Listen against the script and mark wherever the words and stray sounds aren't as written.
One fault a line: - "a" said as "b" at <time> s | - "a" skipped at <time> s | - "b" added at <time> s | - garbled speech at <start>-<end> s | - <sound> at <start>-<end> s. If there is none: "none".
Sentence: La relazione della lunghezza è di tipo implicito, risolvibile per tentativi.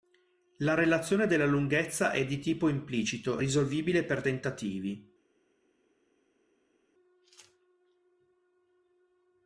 none